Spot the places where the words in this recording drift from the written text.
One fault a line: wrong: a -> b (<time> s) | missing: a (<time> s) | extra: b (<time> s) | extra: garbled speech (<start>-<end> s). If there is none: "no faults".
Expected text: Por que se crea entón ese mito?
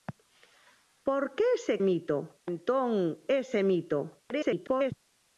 wrong: crea -> mito (1.8 s)
extra: garbled speech (4.3-4.9 s)